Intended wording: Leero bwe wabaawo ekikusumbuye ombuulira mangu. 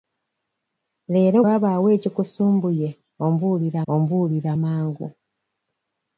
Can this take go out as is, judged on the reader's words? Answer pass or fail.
fail